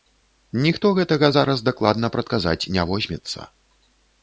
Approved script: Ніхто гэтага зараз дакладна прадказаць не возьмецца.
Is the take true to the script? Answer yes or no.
yes